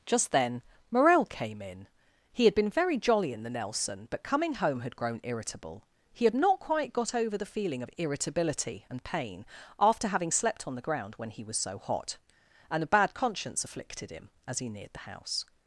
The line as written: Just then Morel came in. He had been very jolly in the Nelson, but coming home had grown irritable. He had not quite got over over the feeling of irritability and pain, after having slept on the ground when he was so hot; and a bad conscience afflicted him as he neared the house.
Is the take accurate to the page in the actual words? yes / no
no